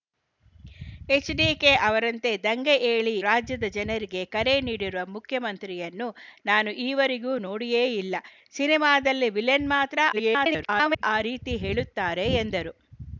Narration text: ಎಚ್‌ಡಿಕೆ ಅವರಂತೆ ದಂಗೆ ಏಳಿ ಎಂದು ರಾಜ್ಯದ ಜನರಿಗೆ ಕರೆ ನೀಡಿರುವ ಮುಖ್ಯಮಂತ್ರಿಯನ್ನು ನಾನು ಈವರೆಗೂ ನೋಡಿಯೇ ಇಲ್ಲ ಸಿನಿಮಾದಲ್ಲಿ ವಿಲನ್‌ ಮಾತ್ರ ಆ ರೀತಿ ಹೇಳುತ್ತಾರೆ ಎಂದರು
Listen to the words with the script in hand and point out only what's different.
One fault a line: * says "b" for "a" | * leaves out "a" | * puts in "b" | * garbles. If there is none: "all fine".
* leaves out "ಎಂದು"
* garbles